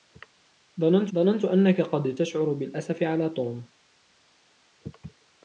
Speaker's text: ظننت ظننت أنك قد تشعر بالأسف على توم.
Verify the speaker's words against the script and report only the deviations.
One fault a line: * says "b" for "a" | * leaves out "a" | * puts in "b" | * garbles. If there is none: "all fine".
all fine